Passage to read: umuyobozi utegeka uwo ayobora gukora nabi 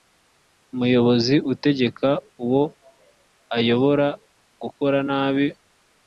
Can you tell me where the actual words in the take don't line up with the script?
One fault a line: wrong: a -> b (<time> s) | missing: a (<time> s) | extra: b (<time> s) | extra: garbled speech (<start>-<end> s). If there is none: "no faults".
no faults